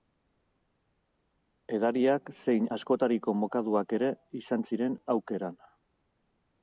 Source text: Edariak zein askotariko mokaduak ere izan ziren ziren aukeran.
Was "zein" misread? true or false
false